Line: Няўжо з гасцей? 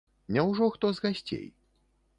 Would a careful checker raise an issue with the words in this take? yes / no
yes